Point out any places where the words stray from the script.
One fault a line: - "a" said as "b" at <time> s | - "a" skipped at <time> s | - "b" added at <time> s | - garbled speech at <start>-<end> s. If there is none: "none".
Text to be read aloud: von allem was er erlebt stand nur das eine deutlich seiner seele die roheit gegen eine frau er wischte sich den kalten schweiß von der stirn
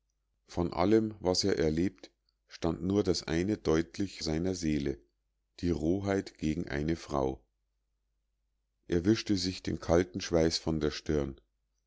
none